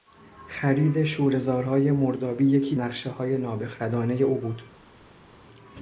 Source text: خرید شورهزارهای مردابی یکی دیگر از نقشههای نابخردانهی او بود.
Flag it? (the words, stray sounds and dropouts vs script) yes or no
yes